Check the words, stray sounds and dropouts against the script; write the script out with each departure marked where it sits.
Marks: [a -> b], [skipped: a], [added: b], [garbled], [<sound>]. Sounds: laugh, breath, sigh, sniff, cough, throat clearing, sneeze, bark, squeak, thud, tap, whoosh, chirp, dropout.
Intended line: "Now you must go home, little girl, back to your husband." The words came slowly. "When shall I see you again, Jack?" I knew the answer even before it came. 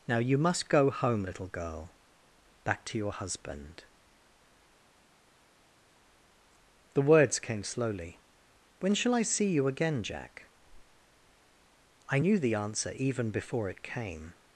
"Now you must go home, little girl, back to your husband." The words came slowly. "When shall I see you again, Jack?" I knew the answer even before it came.